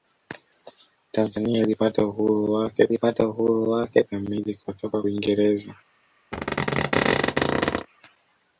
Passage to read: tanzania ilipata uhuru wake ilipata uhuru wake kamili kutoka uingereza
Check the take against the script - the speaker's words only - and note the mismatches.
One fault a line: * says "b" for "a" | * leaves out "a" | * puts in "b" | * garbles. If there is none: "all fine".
all fine